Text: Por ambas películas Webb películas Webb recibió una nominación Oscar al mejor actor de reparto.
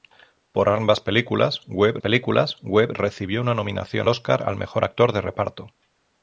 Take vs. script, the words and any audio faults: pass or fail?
pass